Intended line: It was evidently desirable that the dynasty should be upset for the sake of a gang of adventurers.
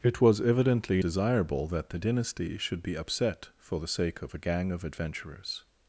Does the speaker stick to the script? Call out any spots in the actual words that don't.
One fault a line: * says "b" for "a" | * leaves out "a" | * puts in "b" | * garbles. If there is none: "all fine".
all fine